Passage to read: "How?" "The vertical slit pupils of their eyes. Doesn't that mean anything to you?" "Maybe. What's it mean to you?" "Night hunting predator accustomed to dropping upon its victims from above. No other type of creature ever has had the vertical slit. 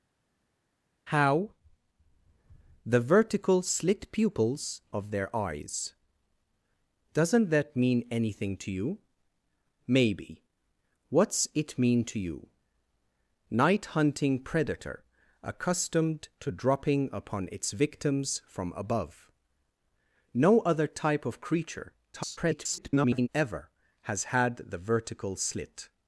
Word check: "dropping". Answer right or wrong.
right